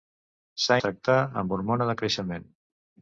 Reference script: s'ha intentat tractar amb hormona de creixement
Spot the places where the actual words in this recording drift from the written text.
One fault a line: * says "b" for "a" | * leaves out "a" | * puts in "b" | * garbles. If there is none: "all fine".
* leaves out "intentat"